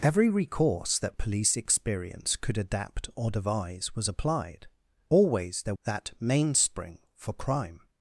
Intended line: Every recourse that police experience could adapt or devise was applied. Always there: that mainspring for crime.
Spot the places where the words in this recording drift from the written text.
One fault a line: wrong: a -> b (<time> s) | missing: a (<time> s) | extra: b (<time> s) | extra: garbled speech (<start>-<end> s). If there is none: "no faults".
no faults